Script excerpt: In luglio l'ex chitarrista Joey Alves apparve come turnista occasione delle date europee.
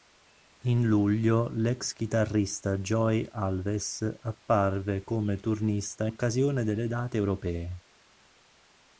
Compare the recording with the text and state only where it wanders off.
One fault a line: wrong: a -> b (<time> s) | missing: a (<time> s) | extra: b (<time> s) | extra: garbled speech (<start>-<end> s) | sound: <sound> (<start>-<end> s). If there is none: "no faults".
no faults